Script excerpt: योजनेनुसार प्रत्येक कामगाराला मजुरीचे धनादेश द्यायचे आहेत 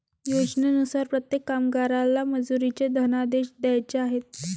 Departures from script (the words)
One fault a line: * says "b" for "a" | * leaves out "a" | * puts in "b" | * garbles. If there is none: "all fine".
all fine